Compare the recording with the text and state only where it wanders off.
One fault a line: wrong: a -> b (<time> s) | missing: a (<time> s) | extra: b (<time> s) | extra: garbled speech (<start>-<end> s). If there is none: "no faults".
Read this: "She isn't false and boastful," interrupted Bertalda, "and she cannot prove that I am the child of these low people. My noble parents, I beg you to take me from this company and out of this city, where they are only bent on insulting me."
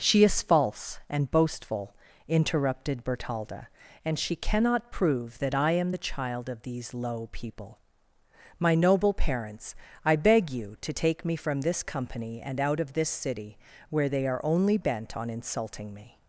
wrong: isn't -> is (0.2 s)